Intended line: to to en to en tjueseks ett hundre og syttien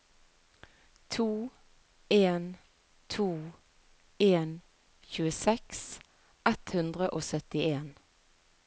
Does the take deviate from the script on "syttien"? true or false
false